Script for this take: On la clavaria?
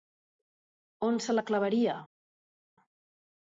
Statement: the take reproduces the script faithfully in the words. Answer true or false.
false